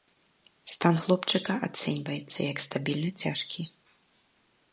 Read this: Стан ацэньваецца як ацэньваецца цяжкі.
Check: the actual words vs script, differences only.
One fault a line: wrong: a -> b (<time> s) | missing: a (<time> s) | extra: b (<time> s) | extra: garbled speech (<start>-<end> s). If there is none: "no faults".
extra: хлопчыка (1.0 s)
wrong: ацэньваецца -> стабільна (2.7 s)